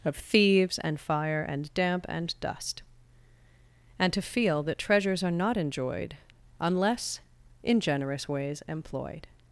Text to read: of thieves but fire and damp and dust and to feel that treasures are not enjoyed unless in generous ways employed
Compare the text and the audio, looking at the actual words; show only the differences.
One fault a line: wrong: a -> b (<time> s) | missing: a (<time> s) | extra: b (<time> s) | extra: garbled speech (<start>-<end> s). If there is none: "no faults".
wrong: but -> and (0.8 s)